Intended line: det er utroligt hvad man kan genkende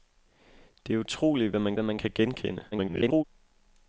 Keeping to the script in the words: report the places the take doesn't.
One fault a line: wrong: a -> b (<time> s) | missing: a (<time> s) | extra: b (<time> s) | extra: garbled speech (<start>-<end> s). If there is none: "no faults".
extra: hvad man (1.7 s)
extra: garbled speech (2.7-3.2 s)